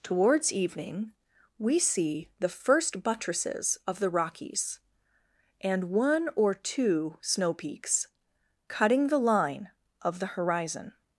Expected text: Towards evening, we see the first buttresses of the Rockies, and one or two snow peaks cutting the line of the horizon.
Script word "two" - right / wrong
right